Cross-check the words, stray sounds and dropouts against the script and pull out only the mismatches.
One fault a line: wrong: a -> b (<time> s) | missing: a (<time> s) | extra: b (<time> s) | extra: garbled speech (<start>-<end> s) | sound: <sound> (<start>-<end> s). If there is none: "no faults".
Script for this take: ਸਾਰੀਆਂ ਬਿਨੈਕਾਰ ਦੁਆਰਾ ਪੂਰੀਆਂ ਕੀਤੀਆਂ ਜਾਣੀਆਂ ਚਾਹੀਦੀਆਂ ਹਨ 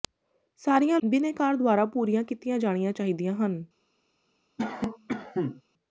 sound: cough (4.6-5.6 s)